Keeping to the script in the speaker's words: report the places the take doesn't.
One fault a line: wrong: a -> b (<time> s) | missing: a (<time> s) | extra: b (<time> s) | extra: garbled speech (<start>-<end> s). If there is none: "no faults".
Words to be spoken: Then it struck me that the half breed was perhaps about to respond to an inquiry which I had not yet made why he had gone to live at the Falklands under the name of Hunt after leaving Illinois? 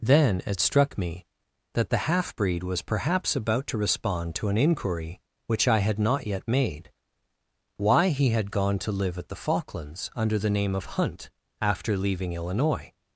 no faults